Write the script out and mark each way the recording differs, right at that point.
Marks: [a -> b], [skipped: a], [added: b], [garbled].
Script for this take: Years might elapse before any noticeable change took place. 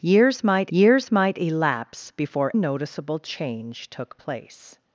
Years might [added: years might] elapse before [skipped: any] noticeable change took place.